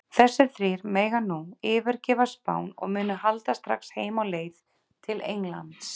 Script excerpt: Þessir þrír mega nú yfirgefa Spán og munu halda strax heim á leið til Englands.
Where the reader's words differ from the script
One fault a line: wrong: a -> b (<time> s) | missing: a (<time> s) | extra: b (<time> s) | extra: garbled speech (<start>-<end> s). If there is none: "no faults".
no faults